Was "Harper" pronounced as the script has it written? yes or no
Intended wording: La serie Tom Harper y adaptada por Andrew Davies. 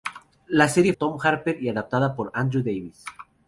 yes